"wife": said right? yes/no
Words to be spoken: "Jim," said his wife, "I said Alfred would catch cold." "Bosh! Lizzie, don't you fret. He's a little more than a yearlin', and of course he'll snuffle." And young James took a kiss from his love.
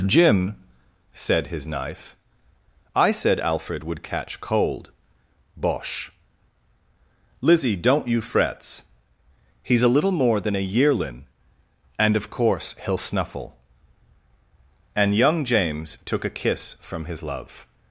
no